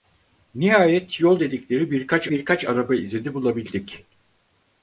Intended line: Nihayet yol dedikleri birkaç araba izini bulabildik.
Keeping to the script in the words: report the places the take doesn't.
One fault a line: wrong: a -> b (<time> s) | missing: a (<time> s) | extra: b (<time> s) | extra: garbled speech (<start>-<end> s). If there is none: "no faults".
extra: birkaç (2.3 s)